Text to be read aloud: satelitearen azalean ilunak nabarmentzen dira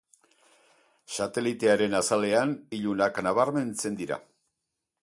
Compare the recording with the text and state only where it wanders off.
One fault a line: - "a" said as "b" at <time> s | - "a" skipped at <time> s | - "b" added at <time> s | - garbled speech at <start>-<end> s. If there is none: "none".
none